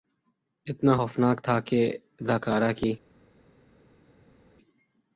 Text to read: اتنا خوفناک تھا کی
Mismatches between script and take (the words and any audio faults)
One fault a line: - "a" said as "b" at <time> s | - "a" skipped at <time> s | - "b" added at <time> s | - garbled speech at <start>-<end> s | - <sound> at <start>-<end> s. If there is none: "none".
- "کہ اداکارہ" added at 1.7 s